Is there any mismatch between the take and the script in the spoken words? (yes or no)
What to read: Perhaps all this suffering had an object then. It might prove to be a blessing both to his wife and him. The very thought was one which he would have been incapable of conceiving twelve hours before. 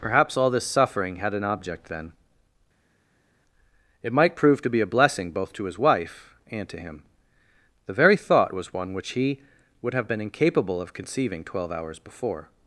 yes